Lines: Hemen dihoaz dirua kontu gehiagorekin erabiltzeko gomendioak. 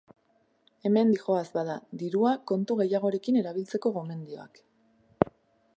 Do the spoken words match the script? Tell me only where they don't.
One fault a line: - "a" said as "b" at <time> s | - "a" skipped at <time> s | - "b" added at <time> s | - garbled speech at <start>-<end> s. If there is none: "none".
- "bada" added at 1.6 s